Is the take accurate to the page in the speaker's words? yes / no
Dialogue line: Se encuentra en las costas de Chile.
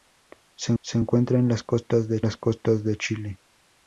no